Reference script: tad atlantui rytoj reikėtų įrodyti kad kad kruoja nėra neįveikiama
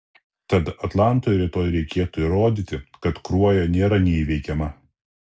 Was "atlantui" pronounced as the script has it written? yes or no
yes